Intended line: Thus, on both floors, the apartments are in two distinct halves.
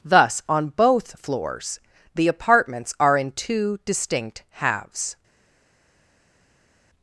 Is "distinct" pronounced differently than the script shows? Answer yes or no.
no